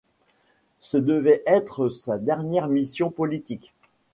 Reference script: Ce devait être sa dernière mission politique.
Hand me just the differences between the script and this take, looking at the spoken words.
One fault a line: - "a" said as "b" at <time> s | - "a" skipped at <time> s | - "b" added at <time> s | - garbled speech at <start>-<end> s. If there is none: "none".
none